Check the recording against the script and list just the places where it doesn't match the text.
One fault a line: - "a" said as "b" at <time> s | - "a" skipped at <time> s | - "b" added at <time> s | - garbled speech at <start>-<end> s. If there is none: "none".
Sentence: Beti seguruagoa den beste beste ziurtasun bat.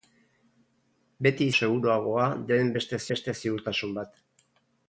none